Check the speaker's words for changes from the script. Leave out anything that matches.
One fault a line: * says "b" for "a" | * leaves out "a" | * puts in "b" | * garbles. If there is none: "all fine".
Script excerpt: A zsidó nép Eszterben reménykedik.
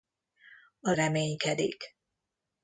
* leaves out "zsidó nép Eszterben"